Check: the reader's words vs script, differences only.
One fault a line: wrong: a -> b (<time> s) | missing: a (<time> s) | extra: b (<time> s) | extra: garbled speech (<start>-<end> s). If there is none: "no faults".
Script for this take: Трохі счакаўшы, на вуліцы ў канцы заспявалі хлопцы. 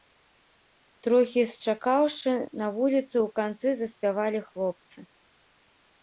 no faults